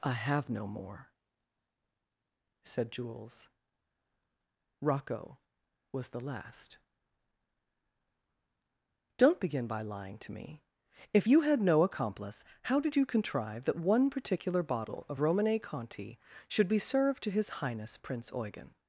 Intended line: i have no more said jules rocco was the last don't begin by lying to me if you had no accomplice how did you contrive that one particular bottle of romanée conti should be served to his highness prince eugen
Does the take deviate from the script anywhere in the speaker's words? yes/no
no